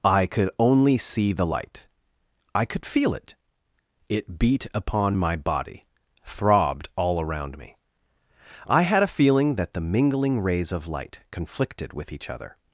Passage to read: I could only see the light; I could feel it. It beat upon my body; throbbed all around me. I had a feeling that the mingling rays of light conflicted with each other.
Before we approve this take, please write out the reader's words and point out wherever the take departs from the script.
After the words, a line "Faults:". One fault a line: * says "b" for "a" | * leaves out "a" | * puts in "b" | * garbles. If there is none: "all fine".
I could only see the light; I could feel it. It beat upon my body; throbbed all around me. I had a feeling that the mingling rays of light conflicted with each other.
Faults:
all fine